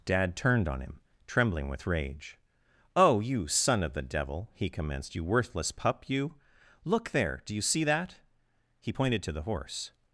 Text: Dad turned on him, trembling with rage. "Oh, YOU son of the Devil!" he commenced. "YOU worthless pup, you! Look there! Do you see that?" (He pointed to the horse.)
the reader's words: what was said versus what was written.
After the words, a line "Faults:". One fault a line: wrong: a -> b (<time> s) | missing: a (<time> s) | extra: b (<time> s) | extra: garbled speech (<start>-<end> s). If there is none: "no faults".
Dad turned on him, trembling with rage. "Oh, YOU son of the Devil!" he commenced. "YOU worthless pup, you! Look there! Do you see that?" (He pointed to the horse.)
Faults:
no faults